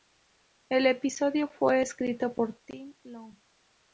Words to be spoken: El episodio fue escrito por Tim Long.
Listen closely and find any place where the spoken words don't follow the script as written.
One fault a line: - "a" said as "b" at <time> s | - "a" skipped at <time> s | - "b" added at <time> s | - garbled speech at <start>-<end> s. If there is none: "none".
none